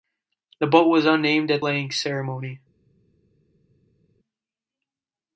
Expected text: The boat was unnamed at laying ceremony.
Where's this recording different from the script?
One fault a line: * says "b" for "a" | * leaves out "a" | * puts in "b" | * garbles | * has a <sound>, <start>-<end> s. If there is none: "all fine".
all fine